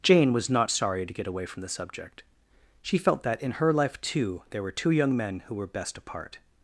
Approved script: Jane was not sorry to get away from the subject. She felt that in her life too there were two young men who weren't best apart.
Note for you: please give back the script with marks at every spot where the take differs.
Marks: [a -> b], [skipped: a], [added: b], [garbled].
Jane was not sorry to get away from the subject. She felt that in her life too there were two young men who [weren't -> were] best apart.